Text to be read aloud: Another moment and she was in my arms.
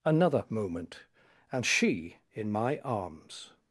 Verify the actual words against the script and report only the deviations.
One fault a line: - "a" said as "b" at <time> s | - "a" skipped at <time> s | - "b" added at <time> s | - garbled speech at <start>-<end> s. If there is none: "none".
- "was" skipped at 2.2 s